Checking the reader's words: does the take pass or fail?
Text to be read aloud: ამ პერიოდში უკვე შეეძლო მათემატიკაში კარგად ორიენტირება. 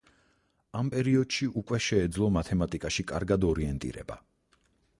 pass